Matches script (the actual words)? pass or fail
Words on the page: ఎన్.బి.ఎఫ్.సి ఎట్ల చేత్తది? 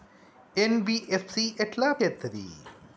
pass